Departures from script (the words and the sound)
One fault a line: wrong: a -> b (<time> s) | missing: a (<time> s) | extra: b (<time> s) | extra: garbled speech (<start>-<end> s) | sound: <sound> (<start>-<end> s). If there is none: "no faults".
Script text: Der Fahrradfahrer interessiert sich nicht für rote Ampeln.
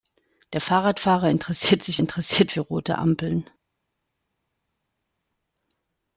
wrong: nicht -> interessiert (2.0 s)